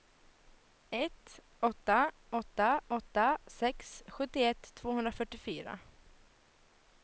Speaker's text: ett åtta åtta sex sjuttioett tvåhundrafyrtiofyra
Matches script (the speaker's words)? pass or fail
fail